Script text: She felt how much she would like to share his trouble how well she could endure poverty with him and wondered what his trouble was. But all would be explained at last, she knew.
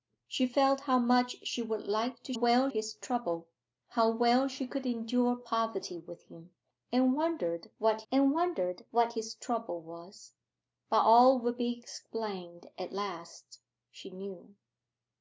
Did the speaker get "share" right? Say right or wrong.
wrong